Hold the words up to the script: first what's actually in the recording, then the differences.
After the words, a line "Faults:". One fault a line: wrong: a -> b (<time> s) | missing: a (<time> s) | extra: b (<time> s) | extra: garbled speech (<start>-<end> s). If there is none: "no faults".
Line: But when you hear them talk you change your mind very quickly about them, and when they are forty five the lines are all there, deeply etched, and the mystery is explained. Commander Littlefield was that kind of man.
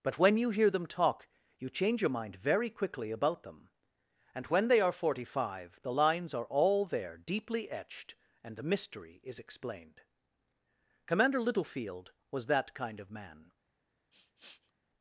But when you hear them talk you change your mind very quickly about them, and when they are forty five the lines are all there, deeply etched, and the mystery is explained. Commander Littlefield was that kind of man.
Faults:
no faults